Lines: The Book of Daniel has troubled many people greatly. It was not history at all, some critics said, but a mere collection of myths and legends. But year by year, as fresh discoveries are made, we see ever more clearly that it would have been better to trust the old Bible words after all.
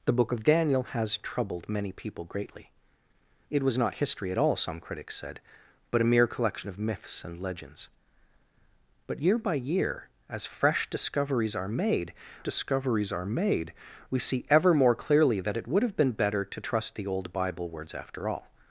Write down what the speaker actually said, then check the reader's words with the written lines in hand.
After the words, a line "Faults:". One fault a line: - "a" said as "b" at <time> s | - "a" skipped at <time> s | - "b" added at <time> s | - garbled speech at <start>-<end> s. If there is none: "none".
The Book of Daniel has troubled many people greatly. It was not history at all, some critics said, but a mere collection of myths and legends. But year by year, as fresh discoveries are made discoveries are made, we see ever more clearly that it would have been better to trust the old Bible words after all.
Faults:
- "discoveries are made" added at 12.4 s